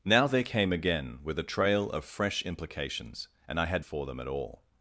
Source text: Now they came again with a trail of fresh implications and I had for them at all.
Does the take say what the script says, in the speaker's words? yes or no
yes